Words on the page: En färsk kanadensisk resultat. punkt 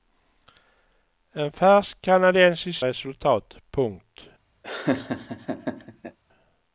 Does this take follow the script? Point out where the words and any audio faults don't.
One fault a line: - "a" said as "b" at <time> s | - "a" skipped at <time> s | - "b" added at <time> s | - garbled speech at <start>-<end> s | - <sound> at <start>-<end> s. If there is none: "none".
- laugh at 4.6-6.2 s